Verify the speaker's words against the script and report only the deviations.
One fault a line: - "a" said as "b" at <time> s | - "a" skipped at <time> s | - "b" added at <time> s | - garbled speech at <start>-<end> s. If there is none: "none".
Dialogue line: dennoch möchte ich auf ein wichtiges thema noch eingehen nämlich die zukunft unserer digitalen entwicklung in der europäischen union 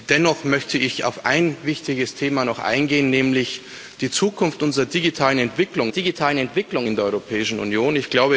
- "digitalen entwicklung" added at 5.9 s